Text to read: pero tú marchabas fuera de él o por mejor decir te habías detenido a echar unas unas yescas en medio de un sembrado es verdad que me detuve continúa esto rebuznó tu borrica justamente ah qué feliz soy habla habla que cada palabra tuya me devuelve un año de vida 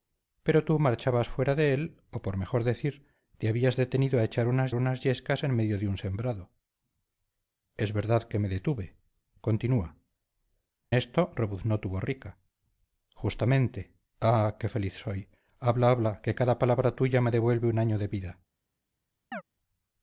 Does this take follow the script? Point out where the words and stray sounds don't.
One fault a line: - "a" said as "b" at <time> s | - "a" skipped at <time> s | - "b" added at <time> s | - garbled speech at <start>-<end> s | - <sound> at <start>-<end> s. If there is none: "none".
- chirp at 19.3-19.4 s